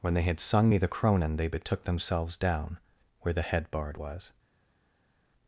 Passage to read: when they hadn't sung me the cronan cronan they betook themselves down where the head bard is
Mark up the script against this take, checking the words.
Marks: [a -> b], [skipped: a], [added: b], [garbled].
when they [hadn't -> had] sung me the cronan [skipped: cronan] they betook themselves down where the head bard [is -> was]